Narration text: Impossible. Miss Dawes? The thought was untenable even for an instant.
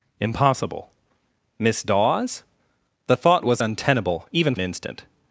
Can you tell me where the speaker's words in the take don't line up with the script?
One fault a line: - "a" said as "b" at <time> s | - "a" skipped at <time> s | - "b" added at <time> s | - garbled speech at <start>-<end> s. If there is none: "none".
- "for" skipped at 4.5 s